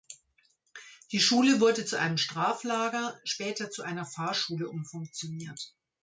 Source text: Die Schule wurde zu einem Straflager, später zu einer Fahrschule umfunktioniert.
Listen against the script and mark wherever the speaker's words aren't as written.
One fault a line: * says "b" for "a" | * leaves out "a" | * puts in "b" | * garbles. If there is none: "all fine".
all fine